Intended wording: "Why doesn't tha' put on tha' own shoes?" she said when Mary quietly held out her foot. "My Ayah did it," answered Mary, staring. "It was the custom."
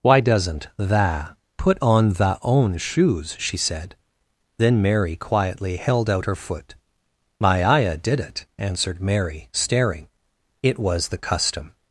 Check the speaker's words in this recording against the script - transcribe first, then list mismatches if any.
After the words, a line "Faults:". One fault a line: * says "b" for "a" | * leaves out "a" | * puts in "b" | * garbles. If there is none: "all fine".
"Why doesn't tha' put on tha' own shoes?" she said then Mary quietly held out her foot. "My Ayah did it," answered Mary, staring. "It was the custom."
Faults:
* says "then" for "when"